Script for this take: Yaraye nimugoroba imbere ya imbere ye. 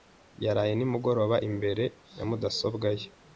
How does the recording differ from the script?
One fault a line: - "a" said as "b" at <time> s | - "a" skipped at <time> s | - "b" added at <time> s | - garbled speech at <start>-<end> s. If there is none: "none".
- "imbere" said as "mudasobwa" at 2.3 s